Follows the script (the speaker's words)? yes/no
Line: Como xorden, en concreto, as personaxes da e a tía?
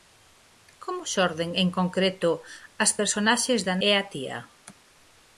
yes